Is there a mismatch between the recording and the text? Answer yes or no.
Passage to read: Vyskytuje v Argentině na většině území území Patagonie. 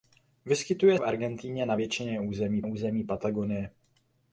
no